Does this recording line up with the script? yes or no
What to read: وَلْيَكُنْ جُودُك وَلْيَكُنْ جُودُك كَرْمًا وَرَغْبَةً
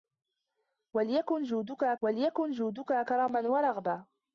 yes